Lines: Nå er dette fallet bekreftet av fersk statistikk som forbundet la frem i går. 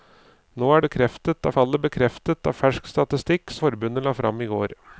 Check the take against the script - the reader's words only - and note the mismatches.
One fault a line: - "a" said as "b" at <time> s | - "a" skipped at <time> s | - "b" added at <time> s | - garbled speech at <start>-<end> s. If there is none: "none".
- "dette" said as "bekreftet" at 0.8 s
- "som" skipped at 3.6 s